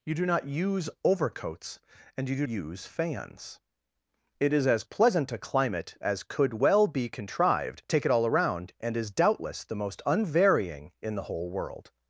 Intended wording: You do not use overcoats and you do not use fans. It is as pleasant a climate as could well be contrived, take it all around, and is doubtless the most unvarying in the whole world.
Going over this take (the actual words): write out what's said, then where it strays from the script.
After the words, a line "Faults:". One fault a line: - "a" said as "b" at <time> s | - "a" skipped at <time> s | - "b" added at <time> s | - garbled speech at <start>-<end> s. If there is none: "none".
You do not use overcoats and you do use fans. It is as pleasant a climate as could well be contrived, take it all around, and is doubtless the most unvarying in the whole world.
Faults:
- "not" skipped at 2.5 s